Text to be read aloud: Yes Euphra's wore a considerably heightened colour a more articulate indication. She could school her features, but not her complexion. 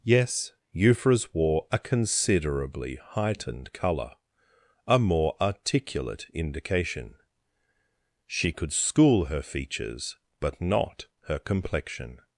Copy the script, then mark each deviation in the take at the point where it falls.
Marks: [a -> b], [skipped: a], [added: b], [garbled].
Yes Euphra's wore a considerably heightened colour a more articulate indication. She could school her features, but not her complexion.